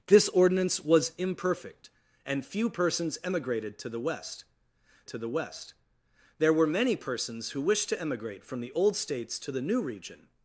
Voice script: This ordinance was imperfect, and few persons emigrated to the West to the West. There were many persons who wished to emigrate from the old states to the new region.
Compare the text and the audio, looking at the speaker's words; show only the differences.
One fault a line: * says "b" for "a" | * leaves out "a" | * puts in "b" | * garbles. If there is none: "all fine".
all fine